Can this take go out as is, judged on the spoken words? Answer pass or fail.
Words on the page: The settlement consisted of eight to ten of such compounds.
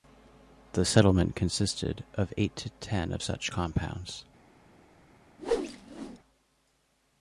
pass